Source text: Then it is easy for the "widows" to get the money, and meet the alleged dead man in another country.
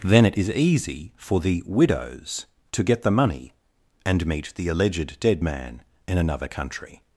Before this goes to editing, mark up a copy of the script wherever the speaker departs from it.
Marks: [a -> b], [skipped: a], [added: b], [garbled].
Then it is easy for the "widows" to get the money, and meet the alleged dead man in another country.